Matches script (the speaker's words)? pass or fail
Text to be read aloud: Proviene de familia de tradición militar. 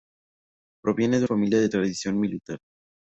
pass